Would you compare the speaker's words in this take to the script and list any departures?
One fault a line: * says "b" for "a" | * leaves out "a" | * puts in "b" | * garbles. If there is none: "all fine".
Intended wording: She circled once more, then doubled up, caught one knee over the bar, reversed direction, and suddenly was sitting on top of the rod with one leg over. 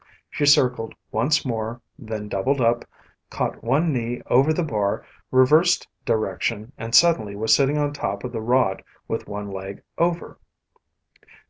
all fine